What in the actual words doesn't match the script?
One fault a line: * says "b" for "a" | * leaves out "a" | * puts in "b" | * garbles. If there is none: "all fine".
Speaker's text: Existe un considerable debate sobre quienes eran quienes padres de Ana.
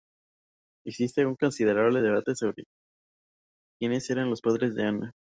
* says "los" for "quienes"